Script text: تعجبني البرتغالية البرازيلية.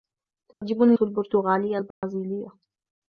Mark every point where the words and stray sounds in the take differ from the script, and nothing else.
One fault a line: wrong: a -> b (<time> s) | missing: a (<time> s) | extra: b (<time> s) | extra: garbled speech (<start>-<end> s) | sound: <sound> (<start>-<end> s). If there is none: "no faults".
sound: dropout (0.5-0.6 s)
sound: dropout (1.9-2.0 s)